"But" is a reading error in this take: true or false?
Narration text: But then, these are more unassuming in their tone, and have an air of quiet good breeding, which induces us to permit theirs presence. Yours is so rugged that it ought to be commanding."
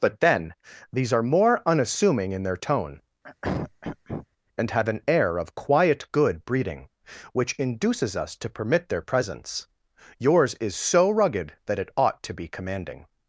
false